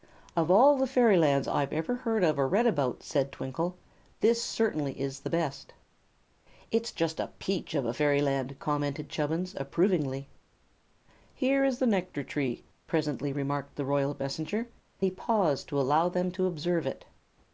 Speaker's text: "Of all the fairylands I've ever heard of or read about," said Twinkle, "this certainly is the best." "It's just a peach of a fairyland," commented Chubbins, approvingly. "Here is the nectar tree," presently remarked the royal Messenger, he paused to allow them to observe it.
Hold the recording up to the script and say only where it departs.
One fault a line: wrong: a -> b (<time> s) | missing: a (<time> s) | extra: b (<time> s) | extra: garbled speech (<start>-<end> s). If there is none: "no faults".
no faults